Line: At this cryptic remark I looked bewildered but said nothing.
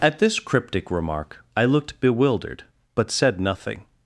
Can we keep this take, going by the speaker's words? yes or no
yes